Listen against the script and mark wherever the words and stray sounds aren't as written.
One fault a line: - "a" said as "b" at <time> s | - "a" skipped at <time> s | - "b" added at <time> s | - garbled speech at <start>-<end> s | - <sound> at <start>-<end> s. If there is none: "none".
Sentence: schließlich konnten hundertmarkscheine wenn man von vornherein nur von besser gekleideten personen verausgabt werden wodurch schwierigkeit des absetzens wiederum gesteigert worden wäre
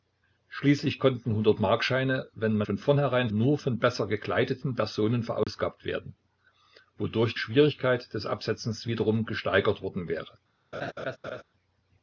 - dropout at 5.4-5.5 s
- laugh at 10.7-11.4 s